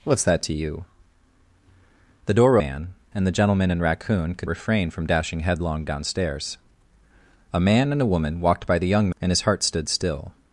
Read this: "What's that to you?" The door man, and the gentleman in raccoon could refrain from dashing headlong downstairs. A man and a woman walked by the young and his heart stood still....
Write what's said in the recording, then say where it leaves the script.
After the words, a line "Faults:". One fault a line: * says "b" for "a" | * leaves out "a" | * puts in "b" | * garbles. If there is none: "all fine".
"What's that to you?" The door man, and the gentleman in raccoon could refrain from dashing headlong downstairs. A man and a woman walked by the young and his heart stood still....
Faults:
all fine